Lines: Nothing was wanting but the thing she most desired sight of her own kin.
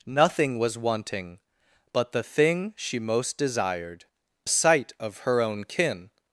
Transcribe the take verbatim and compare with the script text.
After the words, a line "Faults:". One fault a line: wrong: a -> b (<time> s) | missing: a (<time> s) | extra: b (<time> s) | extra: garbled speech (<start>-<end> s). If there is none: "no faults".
Nothing was wanting but the thing she most desired sight of her own kin.
Faults:
no faults